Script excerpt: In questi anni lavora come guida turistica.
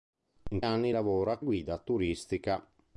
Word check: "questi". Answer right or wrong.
wrong